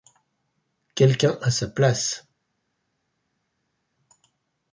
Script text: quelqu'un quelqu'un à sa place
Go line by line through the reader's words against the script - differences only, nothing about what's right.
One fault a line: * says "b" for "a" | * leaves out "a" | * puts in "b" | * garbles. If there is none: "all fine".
* leaves out "quelqu'un"